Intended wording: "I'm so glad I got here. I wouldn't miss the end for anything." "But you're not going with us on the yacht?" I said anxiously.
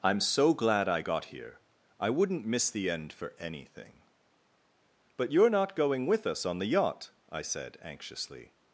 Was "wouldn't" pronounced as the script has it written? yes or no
yes